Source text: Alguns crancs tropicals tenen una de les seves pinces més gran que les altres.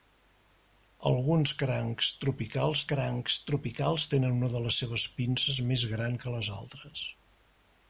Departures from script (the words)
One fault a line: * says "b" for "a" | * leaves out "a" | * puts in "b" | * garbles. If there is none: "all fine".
* puts in "crancs tropicals"